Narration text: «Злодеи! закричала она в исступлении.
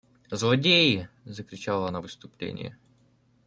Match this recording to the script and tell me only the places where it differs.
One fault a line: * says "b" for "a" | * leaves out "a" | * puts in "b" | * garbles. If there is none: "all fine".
all fine